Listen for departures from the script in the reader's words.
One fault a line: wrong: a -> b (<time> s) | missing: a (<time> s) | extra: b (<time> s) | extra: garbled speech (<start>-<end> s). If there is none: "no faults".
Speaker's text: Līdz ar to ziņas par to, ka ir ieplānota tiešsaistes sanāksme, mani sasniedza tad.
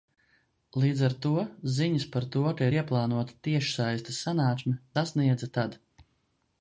missing: mani (4.8 s)